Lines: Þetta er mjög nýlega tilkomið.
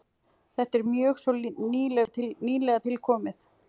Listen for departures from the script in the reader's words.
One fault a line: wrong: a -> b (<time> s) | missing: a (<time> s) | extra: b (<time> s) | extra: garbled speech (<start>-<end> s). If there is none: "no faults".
extra: svo (1.2 s)